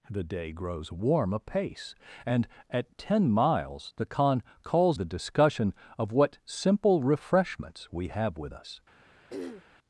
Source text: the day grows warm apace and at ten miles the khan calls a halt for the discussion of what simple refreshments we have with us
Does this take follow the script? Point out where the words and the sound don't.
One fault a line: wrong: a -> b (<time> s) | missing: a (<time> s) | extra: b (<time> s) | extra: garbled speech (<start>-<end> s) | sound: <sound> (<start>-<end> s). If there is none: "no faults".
missing: a halt for (5.0 s)
sound: throat clearing (9.3-9.7 s)